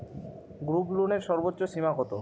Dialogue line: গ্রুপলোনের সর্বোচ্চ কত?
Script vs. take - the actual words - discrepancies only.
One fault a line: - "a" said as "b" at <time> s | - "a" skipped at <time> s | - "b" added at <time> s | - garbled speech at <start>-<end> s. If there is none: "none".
- "সীমা" added at 1.6 s